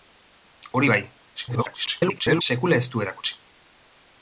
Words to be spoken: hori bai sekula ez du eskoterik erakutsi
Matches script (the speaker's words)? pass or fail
fail